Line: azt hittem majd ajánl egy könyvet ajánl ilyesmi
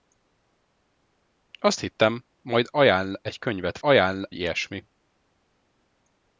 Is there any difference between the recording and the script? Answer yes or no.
no